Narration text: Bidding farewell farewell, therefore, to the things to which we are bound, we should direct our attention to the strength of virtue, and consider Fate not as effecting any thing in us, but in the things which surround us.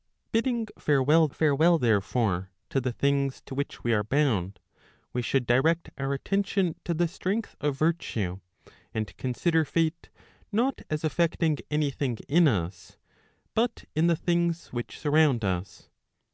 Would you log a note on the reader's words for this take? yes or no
no